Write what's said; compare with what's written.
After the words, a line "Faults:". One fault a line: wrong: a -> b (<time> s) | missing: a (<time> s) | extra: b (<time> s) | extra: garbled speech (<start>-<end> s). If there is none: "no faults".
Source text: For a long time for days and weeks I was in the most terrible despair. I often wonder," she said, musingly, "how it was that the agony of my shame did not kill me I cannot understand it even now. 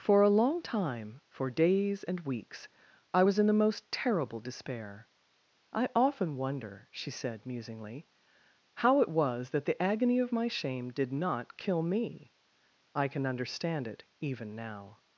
For a long time for days and weeks I was in the most terrible despair. I often wonder," she said, musingly, "how it was that the agony of my shame did not kill me I can understand it even now.
Faults:
wrong: cannot -> can (13.1 s)